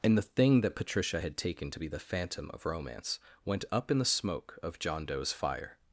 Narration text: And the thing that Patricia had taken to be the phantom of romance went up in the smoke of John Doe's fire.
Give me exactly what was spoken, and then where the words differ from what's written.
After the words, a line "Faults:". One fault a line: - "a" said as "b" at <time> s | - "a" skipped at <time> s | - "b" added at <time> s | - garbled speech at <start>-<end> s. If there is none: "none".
And the thing that Patricia had taken to be the phantom of romance went up in the smoke of John Doe's fire.
Faults:
none